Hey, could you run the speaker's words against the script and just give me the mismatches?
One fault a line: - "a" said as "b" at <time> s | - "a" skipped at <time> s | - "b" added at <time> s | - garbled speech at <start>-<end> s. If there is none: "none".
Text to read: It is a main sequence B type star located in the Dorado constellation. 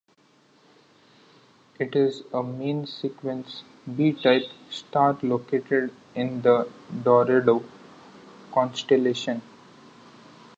none